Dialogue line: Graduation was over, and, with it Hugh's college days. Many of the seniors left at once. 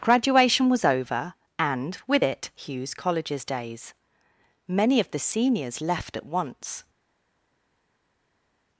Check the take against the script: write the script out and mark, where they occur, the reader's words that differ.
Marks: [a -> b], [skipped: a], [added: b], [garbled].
Graduation was over, and, with it Hugh's [college -> colleges] days. Many of the seniors left at once.